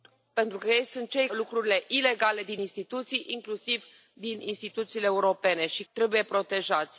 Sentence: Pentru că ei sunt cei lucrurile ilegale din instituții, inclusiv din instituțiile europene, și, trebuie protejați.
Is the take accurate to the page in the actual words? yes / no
yes